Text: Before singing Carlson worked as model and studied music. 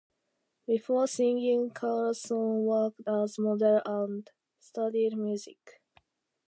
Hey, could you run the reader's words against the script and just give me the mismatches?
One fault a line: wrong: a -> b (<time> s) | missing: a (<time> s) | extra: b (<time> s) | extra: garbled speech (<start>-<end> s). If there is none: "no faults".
no faults